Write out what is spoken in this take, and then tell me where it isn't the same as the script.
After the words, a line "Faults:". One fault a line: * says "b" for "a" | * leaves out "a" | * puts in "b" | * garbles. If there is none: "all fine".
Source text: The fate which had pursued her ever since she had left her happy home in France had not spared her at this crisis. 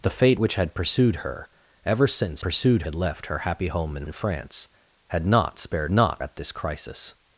The fate which had pursued her ever since pursued had left her happy home in in France had not spared not at this crisis.
Faults:
* says "pursued" for "she"
* puts in "in"
* says "not" for "her"